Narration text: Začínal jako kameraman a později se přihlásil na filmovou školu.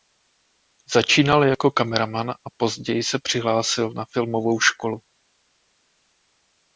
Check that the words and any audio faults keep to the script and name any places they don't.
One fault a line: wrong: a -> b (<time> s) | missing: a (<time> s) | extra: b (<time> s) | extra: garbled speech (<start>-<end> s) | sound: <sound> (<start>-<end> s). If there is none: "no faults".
no faults